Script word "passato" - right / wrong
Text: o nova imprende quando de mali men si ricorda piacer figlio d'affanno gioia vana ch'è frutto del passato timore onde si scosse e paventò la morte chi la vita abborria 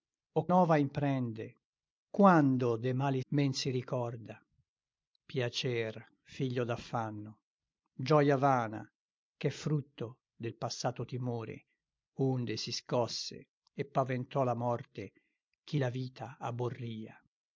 right